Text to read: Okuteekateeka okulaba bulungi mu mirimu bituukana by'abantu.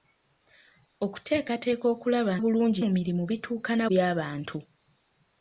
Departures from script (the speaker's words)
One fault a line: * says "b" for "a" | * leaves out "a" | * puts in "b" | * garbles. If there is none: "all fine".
all fine